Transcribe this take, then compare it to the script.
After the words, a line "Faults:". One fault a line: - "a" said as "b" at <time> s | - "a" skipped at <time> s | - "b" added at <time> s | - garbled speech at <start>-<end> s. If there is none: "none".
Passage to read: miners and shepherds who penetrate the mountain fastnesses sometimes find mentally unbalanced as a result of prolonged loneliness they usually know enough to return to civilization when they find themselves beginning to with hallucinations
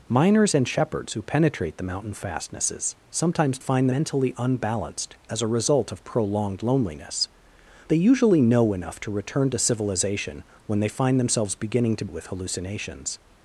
miners and shepherds who penetrate the mountain fastnesses sometimes find mentally unbalanced as a result of prolonged loneliness they usually know enough to return to civilization when they find themselves beginning to with hallucinations
Faults:
none